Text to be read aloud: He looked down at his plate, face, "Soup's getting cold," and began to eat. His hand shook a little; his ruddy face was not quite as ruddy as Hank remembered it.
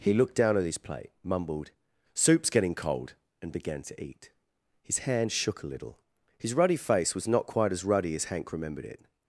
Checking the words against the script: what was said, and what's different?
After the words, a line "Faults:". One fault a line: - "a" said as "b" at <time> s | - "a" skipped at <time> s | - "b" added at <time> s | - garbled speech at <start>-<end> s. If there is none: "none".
He looked down at his plate, mumbled, "Soup's getting cold," and began to eat. His hand shook a little; his ruddy face was not quite as ruddy as Hank remembered it.
Faults:
- "face" said as "mumbled" at 1.2 s